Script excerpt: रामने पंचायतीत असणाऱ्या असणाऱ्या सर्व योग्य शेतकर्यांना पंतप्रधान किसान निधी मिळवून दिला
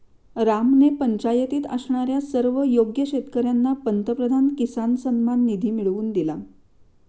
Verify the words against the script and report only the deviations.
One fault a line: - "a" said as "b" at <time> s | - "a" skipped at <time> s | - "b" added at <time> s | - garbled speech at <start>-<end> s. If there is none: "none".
- "असणाऱ्या" skipped at 2.2 s
- "सन्मान" added at 5.0 s